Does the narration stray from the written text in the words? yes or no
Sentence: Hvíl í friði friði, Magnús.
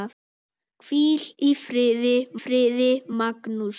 no